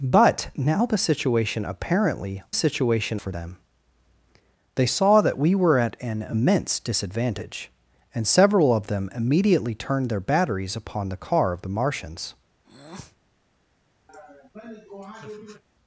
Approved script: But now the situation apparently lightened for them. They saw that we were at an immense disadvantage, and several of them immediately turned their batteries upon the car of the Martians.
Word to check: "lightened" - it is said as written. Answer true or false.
false